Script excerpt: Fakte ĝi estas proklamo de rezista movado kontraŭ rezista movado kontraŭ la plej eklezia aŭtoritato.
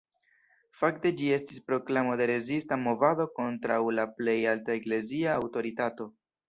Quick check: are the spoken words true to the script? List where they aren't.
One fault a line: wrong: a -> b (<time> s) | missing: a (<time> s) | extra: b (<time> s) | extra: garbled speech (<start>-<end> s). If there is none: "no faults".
wrong: estas -> estis (1.4 s)
missing: rezista movado kontraŭ (3.8 s)
extra: alta (4.6 s)